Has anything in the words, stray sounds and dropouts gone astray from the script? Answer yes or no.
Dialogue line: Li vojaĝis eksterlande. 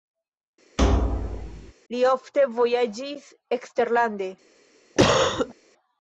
yes